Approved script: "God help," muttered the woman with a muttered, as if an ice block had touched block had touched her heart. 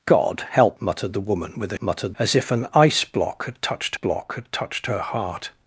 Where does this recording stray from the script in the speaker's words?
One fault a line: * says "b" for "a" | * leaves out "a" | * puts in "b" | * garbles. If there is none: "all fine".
all fine